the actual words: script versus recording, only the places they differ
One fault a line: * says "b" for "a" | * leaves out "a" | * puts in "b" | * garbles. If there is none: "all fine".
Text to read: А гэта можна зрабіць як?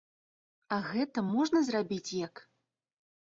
all fine